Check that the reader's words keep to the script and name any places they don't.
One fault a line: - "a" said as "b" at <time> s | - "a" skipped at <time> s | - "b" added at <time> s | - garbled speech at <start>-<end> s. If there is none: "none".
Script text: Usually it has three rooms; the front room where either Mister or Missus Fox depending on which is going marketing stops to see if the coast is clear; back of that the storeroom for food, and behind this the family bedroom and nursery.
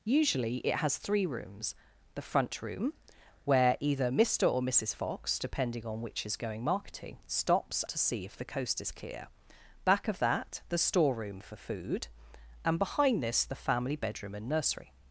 none